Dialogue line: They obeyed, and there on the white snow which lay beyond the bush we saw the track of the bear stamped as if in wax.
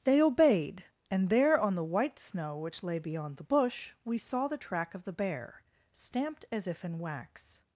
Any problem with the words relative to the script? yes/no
no